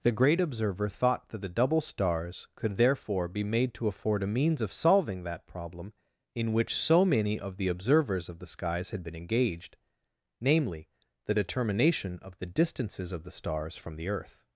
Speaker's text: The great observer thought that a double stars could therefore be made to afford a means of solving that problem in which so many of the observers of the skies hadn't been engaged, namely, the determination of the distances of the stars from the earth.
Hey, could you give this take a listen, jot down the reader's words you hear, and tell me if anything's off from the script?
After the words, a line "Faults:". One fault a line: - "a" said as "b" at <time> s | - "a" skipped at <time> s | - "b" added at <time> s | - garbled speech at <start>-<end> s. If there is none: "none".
The great observer thought that the double stars could therefore be made to afford a means of solving that problem in which so many of the observers of the skies had been engaged, namely, the determination of the distances of the stars from the earth.
Faults:
- "a" said as "the" at 1.4 s
- "hadn't" said as "had" at 8.9 s